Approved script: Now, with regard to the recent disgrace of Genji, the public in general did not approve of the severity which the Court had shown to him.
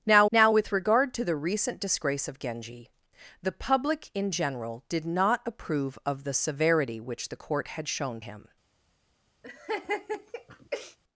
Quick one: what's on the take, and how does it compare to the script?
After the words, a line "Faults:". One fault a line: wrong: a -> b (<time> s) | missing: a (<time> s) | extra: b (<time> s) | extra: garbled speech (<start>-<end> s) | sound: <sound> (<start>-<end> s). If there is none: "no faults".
Now now, with regard to the recent disgrace of Genji, the public in general did not approve of the severity which the Court had shown him.
Faults:
extra: now (0.3 s)
missing: to (8.2 s)
sound: laugh (9.4-11.0 s)